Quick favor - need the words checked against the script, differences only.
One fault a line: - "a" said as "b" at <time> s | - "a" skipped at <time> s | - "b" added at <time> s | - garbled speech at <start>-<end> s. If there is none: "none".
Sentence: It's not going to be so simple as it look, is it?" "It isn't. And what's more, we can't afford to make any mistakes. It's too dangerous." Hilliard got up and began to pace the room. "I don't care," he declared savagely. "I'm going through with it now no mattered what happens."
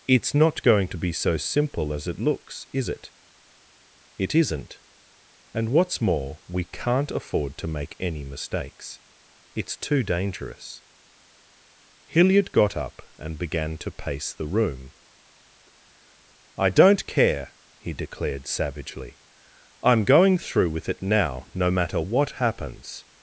- "look" said as "looks" at 2.2 s
- "mattered" said as "matter" at 21.7 s